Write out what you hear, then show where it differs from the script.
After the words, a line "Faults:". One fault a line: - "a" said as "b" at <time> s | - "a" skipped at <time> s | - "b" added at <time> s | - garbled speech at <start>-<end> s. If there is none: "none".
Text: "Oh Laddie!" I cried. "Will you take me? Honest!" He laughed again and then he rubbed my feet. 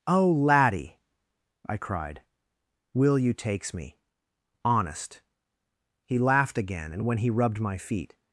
"Oh Laddie!" I cried. "Will you takes me? Honest!" He laughed again and when he rubbed my feet.
Faults:
- "take" said as "takes" at 3.3 s
- "then" said as "when" at 7.0 s